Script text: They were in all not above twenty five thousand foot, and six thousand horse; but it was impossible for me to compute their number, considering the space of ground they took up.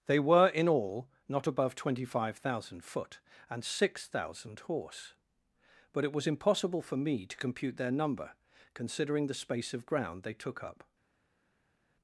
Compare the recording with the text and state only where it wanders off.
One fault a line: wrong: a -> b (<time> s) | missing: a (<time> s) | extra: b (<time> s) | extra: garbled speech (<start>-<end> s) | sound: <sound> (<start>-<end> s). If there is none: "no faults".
no faults